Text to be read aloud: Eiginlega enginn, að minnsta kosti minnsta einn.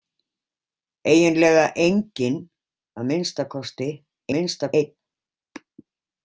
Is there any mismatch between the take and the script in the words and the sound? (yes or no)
no